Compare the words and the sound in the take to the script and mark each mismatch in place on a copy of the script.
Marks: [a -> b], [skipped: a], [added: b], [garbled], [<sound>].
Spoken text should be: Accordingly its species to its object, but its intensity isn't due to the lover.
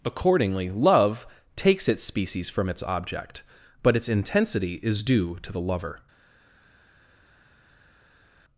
Accordingly [added: love takes] its species [to -> from] its object, but its intensity [isn't -> is] due to the lover.